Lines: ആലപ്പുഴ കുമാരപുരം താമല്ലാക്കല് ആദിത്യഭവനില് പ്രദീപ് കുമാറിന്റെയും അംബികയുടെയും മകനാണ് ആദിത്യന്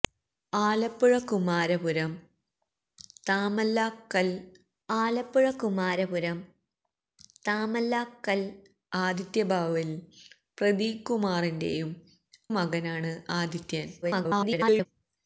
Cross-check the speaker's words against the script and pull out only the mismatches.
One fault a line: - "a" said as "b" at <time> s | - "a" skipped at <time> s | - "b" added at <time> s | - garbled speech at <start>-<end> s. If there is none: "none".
- "ആലപ്പുഴ കുമാരപുരം താമല്ലാക്കല്" added at 4.9 s
- "അംബികയുടെയും" skipped at 11.9 s
- garbled speech at 14.0-14.9 s